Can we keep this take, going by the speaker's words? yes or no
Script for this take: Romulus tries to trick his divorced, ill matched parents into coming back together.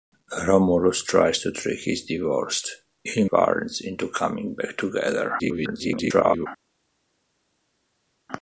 no